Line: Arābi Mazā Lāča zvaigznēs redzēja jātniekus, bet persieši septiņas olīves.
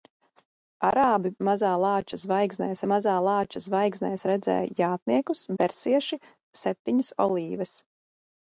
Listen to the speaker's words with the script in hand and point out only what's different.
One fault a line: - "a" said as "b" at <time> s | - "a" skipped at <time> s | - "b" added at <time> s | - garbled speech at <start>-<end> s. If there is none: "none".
- "Mazā Lāča zvaigznēs" added at 2.9 s
- "bet" skipped at 5.4 s